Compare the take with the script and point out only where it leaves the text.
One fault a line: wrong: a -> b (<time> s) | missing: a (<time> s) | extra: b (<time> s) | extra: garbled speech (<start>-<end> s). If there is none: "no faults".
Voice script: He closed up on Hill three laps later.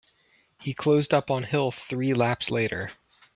no faults